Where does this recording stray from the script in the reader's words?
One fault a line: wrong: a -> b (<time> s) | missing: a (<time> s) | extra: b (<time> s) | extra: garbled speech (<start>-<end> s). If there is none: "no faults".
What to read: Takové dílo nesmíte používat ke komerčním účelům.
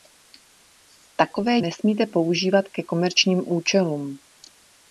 missing: dílo (1.6 s)